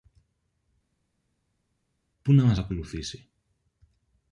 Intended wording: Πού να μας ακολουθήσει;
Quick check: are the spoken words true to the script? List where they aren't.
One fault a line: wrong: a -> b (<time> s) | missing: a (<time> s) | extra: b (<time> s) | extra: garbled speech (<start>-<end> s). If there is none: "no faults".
no faults